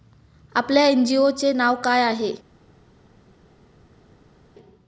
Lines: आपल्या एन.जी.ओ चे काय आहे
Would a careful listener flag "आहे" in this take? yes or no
no